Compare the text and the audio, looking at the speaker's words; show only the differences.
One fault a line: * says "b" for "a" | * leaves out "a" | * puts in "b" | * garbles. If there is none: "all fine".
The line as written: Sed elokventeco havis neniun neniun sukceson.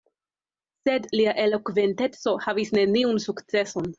* puts in "lia"
* leaves out "neniun"